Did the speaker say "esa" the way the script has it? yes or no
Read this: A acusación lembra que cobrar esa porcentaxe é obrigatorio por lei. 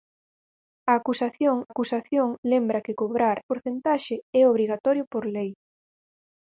no